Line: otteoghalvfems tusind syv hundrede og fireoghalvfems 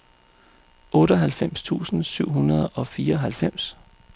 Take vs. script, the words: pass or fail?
pass